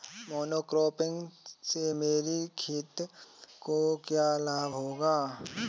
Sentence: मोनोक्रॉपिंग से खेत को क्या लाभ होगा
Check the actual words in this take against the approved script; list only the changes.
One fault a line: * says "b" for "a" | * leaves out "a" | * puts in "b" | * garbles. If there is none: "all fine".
* puts in "मेरी"